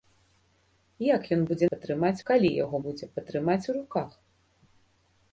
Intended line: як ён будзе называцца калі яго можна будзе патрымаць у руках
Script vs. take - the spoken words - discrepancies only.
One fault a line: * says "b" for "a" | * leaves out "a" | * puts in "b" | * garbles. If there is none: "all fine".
* says "патрымаць" for "называцца"
* leaves out "можна"